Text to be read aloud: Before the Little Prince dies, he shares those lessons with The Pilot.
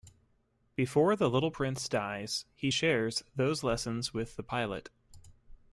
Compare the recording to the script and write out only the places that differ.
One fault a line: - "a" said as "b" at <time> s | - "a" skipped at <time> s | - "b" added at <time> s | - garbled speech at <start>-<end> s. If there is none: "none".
none